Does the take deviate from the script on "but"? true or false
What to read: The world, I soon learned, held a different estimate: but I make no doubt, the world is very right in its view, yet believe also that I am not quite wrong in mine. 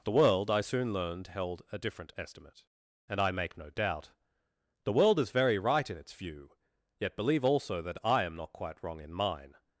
true